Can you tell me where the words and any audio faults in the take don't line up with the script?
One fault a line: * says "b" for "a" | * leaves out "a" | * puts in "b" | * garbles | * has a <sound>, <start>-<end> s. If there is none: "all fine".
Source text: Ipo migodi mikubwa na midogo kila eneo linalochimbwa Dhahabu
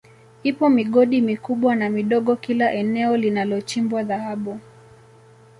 all fine